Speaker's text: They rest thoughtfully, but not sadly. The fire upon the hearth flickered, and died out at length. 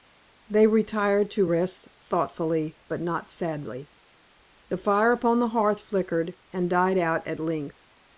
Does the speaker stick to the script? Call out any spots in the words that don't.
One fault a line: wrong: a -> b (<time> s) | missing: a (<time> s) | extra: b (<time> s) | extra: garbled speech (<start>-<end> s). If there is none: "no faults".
extra: retired to (0.7 s)